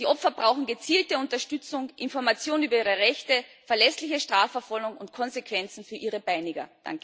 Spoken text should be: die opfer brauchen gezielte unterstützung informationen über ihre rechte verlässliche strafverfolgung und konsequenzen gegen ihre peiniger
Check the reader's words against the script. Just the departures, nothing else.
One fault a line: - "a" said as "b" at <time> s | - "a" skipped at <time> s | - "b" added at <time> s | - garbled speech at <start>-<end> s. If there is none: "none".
- "gegen" said as "für" at 5.8 s